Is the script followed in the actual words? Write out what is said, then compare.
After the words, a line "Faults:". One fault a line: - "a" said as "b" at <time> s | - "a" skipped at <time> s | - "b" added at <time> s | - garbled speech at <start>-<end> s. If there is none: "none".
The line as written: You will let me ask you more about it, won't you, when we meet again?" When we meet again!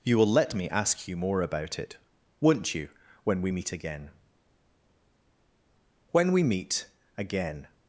You will let me ask you more about it, won't you, when we meet again?" When we meet again!
Faults:
none